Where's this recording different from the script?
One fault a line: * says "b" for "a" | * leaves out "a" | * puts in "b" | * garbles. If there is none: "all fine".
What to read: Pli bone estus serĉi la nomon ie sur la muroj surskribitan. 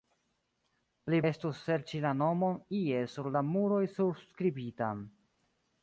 * leaves out "bone"